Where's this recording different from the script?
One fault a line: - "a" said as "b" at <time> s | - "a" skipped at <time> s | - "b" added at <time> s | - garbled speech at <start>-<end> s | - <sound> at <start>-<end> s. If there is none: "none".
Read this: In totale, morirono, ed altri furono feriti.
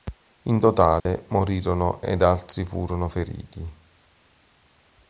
- dropout at 1.0-1.1 s